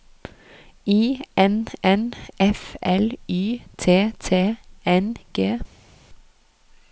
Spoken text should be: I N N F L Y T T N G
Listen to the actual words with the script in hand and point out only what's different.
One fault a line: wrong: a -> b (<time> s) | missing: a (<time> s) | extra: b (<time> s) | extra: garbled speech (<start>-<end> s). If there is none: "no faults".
no faults